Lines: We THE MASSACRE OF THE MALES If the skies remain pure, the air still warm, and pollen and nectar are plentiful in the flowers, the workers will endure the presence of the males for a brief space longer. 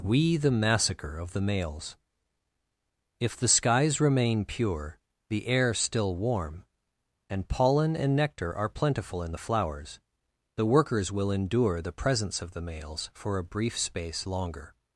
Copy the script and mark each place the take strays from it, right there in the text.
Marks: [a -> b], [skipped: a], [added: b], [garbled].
We THE MASSACRE OF THE MALES If the skies remain pure, the air still warm, and pollen and nectar are plentiful in the flowers, the workers will endure the presence of the males for a brief space longer.